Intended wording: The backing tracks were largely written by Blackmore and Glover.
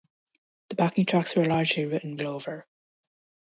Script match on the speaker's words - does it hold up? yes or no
no